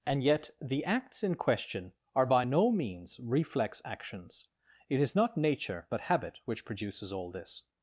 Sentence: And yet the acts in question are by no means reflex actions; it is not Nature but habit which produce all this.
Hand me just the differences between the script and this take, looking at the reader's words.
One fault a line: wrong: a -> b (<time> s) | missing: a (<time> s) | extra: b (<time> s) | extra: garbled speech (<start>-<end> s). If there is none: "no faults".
wrong: produce -> produces (6.6 s)